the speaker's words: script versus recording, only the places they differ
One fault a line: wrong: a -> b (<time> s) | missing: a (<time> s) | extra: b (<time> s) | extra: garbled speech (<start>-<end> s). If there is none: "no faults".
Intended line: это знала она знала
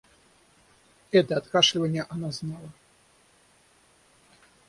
wrong: знала -> откашливанье (1.4 s)